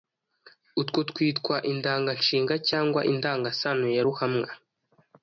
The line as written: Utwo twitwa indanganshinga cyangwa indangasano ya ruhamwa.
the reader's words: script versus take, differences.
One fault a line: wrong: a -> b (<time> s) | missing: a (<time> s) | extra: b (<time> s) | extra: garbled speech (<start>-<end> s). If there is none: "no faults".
no faults